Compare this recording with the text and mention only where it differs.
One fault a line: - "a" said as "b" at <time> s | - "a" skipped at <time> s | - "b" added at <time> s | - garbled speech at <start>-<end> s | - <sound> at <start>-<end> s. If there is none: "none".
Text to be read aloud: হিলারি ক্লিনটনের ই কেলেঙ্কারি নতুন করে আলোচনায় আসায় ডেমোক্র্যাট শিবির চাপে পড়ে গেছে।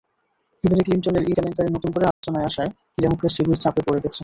- dropout at 2.1-2.2 s